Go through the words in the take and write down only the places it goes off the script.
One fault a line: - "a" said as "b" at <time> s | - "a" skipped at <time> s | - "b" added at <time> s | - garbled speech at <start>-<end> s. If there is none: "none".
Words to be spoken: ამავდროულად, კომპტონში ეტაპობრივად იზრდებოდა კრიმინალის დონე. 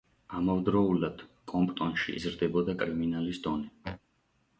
- "ეტაპობრივად" skipped at 2.1 s